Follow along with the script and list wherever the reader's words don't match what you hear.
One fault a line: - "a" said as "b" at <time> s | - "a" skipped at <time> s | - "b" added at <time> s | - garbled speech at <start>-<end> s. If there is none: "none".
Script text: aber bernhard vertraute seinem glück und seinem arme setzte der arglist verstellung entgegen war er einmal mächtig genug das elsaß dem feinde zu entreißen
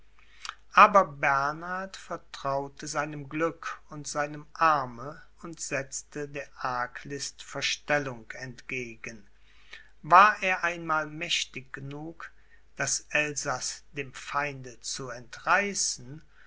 - "und" added at 5.4 s